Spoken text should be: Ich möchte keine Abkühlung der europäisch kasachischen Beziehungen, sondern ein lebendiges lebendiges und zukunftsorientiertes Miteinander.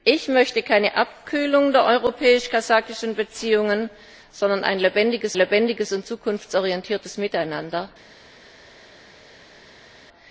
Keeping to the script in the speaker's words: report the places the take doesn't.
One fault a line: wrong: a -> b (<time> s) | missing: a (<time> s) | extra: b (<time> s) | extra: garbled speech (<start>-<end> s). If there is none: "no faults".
no faults